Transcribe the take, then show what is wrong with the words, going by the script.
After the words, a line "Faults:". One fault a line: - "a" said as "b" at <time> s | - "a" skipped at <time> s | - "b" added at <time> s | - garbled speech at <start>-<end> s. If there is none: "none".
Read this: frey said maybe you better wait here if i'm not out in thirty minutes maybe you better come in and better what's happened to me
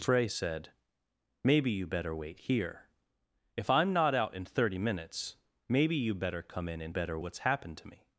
frey said maybe you better wait here if i'm not out in thirty minutes maybe you better come in and better what's happened to me
Faults:
none